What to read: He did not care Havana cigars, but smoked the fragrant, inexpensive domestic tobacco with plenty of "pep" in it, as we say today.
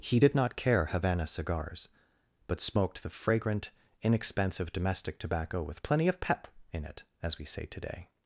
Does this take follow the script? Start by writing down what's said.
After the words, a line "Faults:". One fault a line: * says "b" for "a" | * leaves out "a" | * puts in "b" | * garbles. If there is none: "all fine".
He did not care Havana cigars, but smoked the fragrant, inexpensive domestic tobacco with plenty of "pep" in it, as we say today.
Faults:
all fine